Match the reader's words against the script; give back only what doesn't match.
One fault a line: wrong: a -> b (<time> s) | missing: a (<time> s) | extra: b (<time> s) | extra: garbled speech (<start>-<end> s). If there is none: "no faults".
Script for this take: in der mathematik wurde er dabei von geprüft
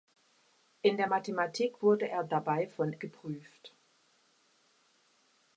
no faults